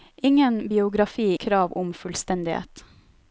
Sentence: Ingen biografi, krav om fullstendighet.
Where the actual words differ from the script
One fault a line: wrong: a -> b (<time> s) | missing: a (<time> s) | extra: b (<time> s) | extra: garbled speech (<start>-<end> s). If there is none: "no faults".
no faults